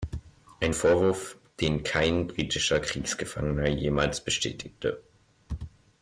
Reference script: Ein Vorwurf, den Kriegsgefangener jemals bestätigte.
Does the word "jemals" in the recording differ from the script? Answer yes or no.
no